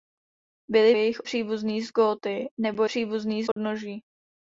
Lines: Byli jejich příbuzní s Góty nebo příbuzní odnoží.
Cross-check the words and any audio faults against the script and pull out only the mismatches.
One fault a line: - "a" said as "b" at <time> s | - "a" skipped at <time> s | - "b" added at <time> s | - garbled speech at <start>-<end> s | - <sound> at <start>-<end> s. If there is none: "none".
- dropout at 3.5-3.6 s